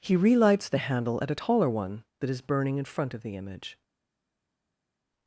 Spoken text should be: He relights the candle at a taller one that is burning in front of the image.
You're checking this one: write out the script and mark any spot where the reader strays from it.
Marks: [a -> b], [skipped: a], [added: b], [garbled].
He relights the [candle -> handle] at a taller one that is burning in front of the image.